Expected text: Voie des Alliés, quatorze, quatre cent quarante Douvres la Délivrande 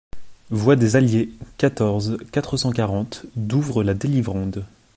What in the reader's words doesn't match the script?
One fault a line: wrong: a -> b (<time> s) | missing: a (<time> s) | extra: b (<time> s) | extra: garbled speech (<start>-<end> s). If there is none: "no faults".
no faults